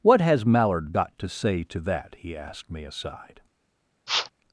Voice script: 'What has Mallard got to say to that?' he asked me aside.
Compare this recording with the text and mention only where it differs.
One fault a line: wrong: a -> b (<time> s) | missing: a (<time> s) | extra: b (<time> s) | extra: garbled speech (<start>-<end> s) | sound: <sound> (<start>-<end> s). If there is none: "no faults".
sound: sniff (4.1-4.3 s)